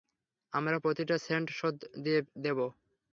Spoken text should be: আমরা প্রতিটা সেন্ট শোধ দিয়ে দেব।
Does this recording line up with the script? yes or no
yes